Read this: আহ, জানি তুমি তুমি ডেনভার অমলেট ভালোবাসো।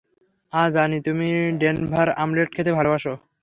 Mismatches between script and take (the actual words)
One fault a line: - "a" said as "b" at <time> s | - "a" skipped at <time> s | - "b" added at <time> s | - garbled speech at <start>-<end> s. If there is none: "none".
- "তুমি" skipped at 1.3 s
- "খেতে" added at 2.5 s